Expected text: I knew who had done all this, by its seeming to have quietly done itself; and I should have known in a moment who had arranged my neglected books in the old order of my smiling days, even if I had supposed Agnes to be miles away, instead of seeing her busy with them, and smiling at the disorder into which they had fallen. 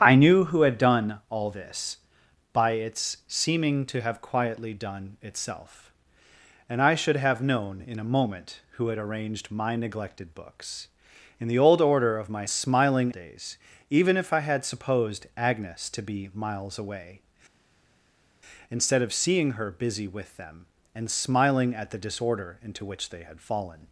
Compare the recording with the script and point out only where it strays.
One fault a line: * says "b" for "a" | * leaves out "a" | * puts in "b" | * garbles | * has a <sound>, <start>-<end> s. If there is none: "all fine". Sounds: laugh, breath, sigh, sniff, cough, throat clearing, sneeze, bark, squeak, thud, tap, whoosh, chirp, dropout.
all fine